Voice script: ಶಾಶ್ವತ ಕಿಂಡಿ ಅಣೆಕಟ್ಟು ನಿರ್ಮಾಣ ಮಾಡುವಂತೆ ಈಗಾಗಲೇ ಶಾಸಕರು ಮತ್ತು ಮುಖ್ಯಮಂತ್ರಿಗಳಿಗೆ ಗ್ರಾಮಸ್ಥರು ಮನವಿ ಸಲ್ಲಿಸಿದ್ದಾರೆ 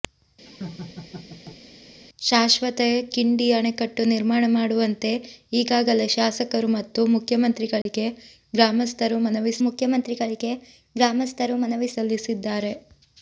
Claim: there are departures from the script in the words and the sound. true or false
true